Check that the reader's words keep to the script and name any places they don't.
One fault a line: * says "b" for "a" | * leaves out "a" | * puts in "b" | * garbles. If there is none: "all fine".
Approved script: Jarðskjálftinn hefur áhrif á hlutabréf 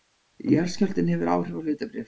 all fine